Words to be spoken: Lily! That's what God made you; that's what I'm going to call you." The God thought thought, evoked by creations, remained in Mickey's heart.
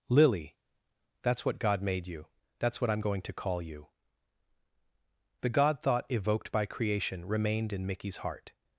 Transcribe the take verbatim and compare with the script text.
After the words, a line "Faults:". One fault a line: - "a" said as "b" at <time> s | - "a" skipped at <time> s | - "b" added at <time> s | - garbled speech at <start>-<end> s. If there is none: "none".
Lily! That's what God made you; that's what I'm going to call you." The God thought, evoked by creation, remained in Mickey's heart.
Faults:
- "thought" skipped at 6.1 s
- "creations" said as "creation" at 6.7 s